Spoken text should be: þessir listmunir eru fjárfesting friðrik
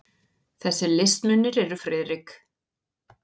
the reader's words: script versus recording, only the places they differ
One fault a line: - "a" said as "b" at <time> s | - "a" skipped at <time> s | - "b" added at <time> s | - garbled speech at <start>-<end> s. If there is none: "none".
- "fjárfesting" skipped at 1.8 s